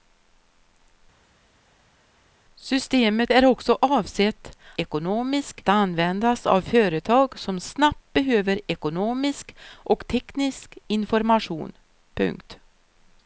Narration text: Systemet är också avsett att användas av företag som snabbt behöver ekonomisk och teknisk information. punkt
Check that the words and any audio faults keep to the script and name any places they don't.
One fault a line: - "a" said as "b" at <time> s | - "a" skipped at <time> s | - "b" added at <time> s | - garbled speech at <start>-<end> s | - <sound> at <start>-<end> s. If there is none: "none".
- "att" said as "ekonomisk" at 4.8 s